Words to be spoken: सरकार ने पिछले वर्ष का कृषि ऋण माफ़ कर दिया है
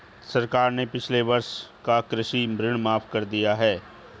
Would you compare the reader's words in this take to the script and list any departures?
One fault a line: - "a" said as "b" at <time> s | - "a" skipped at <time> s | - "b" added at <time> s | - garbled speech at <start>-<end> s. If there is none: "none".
none